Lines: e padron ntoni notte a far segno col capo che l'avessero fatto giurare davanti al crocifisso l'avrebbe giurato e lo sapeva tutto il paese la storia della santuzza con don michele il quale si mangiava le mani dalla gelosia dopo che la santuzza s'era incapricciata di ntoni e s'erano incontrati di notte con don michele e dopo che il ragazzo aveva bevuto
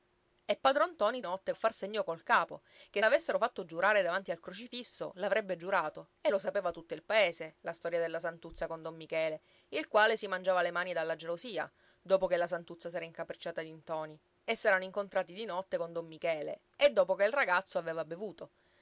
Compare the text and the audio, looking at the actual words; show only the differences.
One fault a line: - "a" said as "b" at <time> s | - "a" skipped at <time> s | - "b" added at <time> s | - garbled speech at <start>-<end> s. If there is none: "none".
none